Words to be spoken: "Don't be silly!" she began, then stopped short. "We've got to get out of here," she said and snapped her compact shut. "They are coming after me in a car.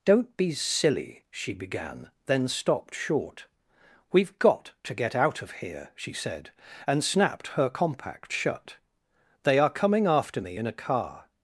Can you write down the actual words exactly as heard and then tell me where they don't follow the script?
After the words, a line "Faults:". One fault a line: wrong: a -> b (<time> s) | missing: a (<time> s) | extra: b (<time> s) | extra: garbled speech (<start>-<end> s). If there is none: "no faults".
"Don't be silly!" she began, then stopped short. "We've got to get out of here," she said and snapped her compact shut. "They are coming after me in a car.
Faults:
no faults